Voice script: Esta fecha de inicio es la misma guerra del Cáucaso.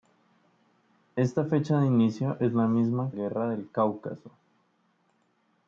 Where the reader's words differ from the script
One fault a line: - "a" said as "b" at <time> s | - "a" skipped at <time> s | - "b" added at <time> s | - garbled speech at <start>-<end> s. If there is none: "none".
none